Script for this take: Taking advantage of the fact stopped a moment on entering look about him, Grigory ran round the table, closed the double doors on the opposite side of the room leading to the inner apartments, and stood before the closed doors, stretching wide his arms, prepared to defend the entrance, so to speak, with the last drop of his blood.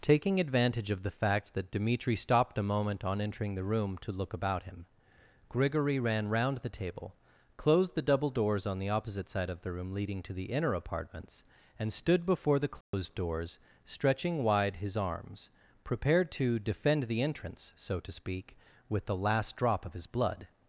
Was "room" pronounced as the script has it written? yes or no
yes